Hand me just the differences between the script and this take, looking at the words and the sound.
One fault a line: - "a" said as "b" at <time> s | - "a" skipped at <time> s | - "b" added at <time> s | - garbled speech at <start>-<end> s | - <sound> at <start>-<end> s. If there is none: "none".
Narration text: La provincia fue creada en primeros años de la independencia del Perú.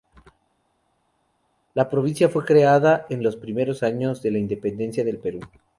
- "los" added at 3.2 s